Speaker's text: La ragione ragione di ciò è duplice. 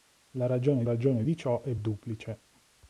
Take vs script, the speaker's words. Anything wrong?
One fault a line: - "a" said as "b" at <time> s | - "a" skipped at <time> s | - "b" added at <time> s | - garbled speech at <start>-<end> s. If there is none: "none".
none